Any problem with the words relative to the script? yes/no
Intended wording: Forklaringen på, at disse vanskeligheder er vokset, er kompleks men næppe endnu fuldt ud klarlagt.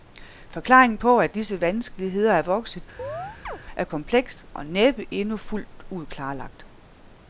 yes